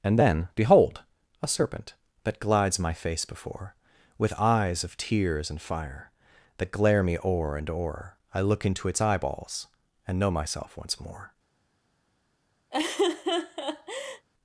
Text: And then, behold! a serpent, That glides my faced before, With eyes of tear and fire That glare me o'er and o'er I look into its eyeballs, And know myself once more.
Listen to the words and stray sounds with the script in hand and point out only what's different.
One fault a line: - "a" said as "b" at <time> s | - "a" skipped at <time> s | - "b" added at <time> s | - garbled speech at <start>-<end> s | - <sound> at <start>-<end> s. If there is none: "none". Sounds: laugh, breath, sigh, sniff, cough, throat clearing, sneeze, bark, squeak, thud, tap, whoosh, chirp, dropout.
- "faced" said as "face" at 2.9 s
- "tear" said as "tears" at 5.0 s
- laugh at 12.7-14.3 s